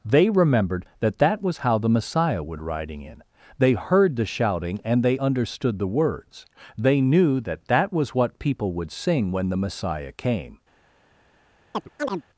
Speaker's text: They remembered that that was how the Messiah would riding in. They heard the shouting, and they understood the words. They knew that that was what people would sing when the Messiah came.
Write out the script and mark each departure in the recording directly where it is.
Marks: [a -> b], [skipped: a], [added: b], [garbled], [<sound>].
They remembered that that was how the Messiah would riding in. They heard the shouting, and they understood the words. They knew that that was what people would sing when the Messiah came. [chirp]